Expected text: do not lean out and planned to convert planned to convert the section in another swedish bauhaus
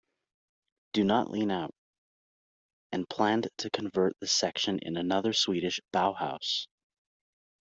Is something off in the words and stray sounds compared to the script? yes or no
yes